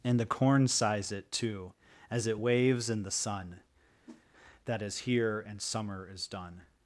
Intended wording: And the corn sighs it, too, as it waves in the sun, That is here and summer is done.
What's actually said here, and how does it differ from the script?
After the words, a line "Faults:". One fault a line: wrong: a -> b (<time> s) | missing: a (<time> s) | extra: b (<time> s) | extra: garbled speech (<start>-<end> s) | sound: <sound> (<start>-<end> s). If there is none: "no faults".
And the corn sighs it, too, as it waves in the sun, That is here and summer is done.
Faults:
sound: whoosh (4.0-4.2 s)